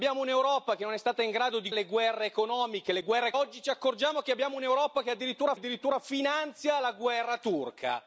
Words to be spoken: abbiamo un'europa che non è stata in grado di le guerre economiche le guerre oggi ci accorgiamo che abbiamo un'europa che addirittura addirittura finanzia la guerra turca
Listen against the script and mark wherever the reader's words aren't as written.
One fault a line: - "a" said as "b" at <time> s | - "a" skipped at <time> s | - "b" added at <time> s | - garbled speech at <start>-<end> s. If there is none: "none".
none